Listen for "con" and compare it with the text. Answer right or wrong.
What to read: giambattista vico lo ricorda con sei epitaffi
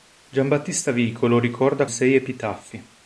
wrong